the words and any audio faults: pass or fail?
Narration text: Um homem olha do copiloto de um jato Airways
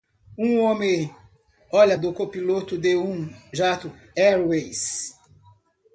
pass